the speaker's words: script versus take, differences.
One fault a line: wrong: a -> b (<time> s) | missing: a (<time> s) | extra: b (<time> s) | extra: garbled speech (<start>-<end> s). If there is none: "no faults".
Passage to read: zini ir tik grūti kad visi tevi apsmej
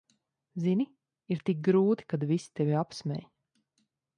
no faults